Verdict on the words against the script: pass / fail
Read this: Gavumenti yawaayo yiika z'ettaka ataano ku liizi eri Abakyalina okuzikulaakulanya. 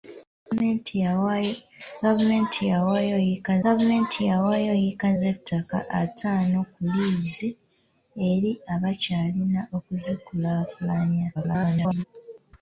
fail